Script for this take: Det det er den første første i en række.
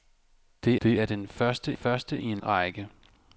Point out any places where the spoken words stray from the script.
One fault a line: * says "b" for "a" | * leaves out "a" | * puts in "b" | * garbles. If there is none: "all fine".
all fine